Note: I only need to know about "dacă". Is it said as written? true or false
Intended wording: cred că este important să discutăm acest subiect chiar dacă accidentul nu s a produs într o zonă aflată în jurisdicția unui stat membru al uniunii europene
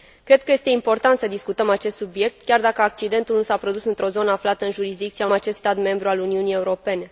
true